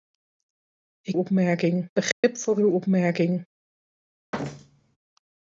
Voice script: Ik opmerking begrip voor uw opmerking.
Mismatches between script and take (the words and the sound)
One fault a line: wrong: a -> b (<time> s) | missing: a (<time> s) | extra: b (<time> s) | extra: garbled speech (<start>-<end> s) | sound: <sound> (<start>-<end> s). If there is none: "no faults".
sound: dropout (2.1-2.2 s)
sound: thud (4.3-5.0 s)